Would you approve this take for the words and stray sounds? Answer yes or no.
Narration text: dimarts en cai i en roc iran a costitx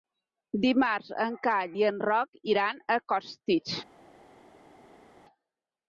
yes